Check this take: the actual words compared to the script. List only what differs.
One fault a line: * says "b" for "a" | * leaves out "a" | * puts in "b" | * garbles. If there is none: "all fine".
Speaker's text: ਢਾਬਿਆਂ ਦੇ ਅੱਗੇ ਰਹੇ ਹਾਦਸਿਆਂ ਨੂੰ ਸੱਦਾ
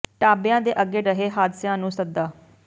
all fine